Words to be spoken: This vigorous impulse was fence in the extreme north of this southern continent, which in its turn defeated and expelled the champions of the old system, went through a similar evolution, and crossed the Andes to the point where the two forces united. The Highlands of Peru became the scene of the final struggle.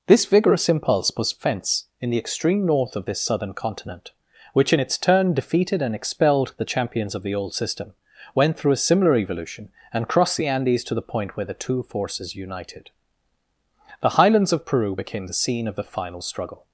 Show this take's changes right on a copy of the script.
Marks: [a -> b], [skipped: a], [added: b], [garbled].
This vigorous impulse was fence in the extreme north of this southern continent, which in its turn defeated and expelled the champions of the old system, went through a similar evolution, and crossed the Andes to the point where the two forces united. The Highlands of Peru became the scene of the final struggle.